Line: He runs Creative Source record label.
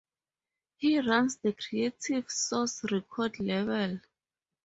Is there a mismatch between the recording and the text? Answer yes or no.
yes